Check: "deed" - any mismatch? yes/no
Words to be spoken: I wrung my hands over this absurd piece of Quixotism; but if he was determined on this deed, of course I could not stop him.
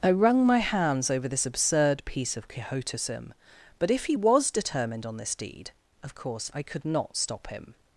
no